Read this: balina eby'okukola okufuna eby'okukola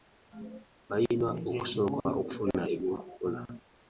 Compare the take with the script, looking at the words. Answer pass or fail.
fail